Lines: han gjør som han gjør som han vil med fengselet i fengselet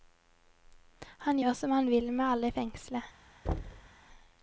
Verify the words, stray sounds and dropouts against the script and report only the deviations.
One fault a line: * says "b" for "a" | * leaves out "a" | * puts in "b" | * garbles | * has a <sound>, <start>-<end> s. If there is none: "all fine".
* leaves out "gjør som han"
* says "alle" for "fengselet"
* has a thud, 3.4-3.9 s